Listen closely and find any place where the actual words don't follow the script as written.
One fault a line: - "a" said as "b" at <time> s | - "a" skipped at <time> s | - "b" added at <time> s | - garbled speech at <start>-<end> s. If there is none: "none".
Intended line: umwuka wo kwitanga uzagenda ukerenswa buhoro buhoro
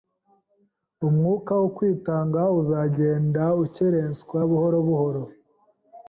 none